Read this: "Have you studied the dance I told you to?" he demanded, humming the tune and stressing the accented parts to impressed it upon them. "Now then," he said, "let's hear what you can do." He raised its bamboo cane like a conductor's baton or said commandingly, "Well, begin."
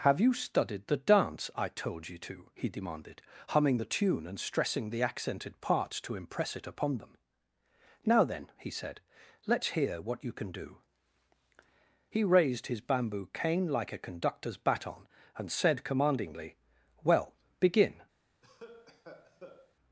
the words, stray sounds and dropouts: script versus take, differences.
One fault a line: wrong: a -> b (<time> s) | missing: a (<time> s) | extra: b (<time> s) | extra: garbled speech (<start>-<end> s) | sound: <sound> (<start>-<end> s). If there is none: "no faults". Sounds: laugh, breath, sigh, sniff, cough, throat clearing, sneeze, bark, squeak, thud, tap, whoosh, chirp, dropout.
wrong: impressed -> impress (6.2 s)
wrong: its -> his (12.7 s)
wrong: or -> and (15.4 s)
sound: cough (18.4-19.7 s)